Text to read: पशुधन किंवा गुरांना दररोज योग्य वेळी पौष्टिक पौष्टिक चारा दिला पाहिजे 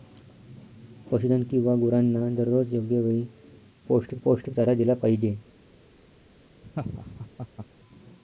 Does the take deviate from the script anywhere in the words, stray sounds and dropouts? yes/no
yes